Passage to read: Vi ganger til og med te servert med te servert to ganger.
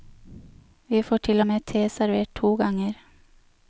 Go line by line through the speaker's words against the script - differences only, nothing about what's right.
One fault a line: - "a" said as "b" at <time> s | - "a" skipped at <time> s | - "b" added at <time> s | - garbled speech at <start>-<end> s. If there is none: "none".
- "ganger" said as "får" at 1.0 s
- "med te servert" skipped at 2.3 s